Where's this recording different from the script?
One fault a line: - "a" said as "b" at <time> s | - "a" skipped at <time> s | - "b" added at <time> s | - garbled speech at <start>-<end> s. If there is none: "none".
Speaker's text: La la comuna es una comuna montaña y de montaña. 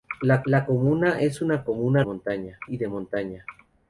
none